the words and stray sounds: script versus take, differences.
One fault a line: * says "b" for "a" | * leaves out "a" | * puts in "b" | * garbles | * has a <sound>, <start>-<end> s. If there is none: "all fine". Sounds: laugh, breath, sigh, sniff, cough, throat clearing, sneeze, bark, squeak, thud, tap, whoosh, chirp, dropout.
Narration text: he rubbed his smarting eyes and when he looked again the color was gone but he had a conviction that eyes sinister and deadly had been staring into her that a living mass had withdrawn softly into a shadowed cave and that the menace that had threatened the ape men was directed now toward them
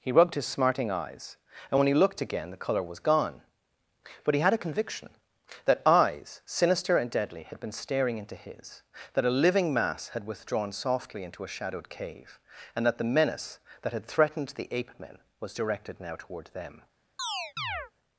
* says "his" for "her"
* has a chirp, 17.2-17.9 s